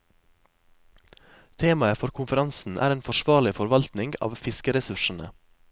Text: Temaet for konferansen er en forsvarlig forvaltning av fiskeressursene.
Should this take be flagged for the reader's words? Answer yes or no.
no